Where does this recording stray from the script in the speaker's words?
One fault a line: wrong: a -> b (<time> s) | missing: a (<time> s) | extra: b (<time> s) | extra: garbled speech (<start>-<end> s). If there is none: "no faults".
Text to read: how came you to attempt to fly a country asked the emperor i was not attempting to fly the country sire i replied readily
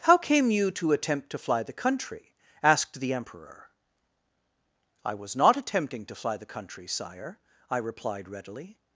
wrong: a -> the (1.6 s)